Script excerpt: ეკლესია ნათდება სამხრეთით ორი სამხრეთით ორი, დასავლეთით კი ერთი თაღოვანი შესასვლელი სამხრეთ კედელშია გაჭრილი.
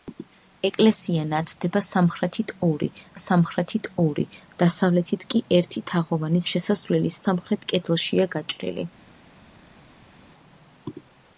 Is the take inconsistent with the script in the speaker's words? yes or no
no